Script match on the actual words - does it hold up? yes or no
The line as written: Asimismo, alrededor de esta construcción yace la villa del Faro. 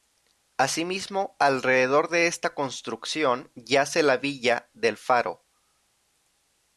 yes